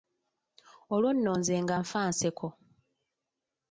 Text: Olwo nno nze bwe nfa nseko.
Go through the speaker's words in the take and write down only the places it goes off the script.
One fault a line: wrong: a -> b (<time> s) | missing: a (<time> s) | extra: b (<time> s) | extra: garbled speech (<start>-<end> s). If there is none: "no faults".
wrong: bwe -> nga (1.6 s)